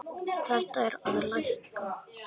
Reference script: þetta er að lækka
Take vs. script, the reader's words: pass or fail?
pass